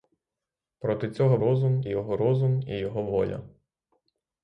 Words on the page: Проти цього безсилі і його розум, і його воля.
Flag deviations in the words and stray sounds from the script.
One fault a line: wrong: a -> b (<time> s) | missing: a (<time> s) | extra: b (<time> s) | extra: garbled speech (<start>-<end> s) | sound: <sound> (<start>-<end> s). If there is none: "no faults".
wrong: безсилі -> розум (1.4 s)